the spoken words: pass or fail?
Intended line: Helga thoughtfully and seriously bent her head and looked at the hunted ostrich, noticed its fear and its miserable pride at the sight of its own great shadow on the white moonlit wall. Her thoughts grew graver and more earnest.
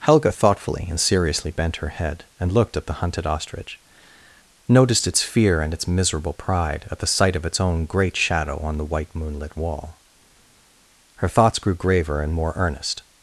pass